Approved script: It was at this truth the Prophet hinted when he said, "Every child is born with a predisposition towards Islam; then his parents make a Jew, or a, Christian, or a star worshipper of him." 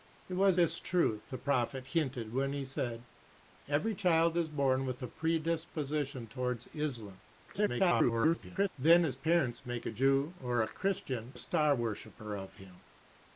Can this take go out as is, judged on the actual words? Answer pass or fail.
fail